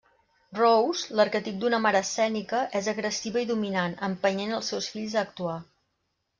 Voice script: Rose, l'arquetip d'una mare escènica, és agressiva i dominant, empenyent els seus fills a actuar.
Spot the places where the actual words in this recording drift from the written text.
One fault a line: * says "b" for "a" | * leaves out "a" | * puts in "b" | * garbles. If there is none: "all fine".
all fine